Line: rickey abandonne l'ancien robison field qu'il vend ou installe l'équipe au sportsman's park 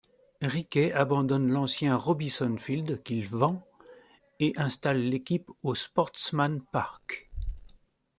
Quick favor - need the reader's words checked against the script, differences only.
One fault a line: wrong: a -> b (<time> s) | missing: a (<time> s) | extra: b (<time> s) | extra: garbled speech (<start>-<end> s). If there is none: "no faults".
wrong: ou -> et (4.4 s)